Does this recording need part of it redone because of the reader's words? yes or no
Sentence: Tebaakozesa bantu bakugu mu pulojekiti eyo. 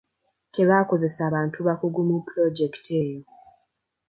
no